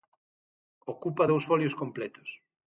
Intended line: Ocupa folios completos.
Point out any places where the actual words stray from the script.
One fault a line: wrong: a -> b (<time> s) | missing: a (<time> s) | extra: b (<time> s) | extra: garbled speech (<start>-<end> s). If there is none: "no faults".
extra: dous (1.2 s)